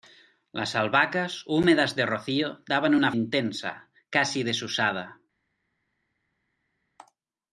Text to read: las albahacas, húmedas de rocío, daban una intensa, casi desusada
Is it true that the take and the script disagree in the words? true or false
false